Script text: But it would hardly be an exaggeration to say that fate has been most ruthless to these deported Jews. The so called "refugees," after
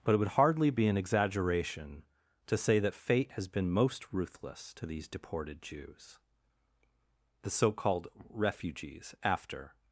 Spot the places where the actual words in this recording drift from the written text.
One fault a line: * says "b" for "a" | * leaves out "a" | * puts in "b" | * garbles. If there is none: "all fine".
all fine